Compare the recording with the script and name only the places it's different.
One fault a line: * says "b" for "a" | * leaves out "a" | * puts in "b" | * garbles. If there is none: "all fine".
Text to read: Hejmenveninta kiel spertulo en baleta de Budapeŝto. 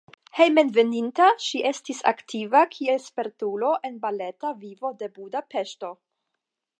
* puts in "ŝi estis aktiva"
* puts in "vivo"